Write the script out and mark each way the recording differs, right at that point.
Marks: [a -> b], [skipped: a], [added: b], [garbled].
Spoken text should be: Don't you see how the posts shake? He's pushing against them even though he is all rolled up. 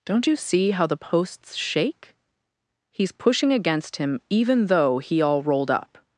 Don't you see how the posts shake? He's pushing against [them -> him] even though he [skipped: is] all rolled up.